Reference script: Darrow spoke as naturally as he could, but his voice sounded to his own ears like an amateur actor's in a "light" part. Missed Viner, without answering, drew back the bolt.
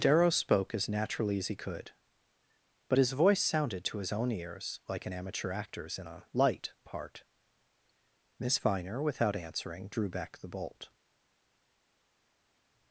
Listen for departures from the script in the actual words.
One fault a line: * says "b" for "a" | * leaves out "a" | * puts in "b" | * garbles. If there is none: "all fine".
* says "Miss" for "Missed"